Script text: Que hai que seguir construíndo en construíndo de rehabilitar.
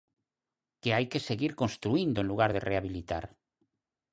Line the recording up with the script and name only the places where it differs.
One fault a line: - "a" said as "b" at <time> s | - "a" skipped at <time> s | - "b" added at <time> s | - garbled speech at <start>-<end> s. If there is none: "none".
- "construíndo" said as "lugar" at 2.3 s